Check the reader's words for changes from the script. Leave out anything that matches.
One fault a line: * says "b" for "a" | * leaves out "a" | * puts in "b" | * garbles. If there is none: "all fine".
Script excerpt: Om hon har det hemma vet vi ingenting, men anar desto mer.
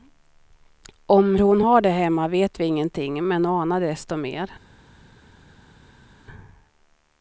all fine